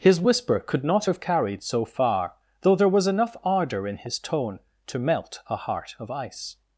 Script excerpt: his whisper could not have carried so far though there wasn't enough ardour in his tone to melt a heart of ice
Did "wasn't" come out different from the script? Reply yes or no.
yes